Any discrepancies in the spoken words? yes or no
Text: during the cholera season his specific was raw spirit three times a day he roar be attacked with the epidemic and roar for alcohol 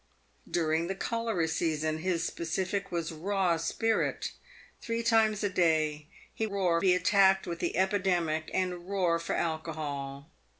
no